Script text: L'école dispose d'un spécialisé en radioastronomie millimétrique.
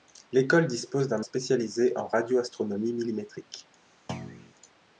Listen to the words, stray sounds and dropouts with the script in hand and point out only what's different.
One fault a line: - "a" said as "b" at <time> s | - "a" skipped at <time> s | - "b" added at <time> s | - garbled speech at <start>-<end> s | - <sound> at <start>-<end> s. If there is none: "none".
- thud at 4.1-4.5 s